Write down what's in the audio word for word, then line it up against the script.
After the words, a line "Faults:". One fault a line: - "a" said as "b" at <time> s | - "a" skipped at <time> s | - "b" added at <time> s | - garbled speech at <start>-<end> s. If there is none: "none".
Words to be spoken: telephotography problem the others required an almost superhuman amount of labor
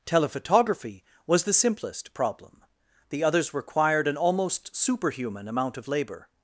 telephotography was the simplest problem the others required an almost superhuman amount of labor
Faults:
- "was the simplest" added at 1.3 s